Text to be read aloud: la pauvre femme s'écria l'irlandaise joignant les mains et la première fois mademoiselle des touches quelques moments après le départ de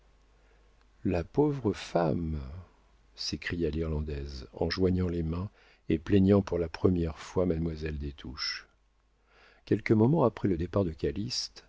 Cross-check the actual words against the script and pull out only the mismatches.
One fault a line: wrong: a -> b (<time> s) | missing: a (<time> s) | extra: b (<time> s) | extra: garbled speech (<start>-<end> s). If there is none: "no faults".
extra: en (4.5 s)
extra: plaignant pour (6.0 s)